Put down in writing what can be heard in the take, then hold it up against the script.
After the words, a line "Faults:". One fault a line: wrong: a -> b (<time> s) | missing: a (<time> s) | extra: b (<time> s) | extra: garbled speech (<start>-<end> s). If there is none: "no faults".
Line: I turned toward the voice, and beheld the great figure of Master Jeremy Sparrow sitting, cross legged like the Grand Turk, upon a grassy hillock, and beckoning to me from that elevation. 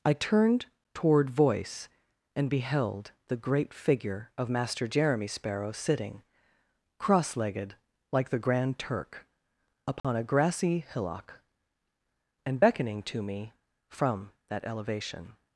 I turned toward voice, and beheld the great figure of Master Jeremy Sparrow sitting, cross legged like the Grand Turk, upon a grassy hillock, and beckoning to me from that elevation.
Faults:
missing: the (1.3 s)